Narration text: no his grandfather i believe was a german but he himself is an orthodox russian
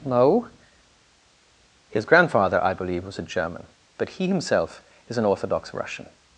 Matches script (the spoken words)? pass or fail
pass